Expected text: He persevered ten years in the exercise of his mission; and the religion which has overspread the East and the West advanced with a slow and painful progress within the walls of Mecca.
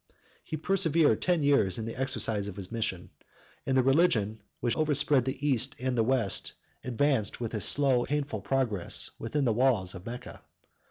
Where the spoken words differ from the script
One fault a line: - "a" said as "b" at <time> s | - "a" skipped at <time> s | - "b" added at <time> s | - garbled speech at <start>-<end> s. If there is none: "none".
- "has" skipped at 4.7 s
- "and" skipped at 8.0 s